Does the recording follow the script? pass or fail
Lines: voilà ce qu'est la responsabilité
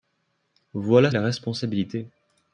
fail